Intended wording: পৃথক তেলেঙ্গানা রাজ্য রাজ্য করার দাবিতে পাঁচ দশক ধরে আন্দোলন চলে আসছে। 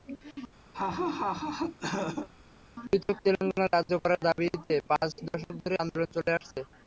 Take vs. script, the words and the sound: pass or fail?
fail